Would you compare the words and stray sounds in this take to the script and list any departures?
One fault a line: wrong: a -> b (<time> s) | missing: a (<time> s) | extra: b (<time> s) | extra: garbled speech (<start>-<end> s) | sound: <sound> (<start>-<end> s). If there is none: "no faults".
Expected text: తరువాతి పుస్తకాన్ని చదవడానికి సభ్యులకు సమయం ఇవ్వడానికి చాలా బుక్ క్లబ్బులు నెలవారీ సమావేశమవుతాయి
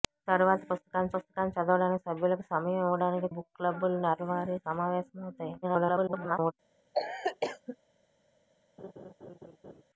extra: పుస్తకాన్ని (1.1 s)
missing: చాలా (3.3 s)
extra: garbled speech (5.6-6.5 s)
sound: cough (6.9-7.8 s)
sound: laugh (8.8-9.8 s)